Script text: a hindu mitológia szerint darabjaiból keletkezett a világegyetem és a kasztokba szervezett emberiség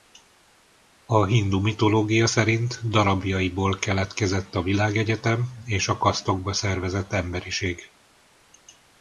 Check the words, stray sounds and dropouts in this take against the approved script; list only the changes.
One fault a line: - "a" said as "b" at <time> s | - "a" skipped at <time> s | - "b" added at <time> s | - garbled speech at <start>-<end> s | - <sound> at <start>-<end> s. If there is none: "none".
none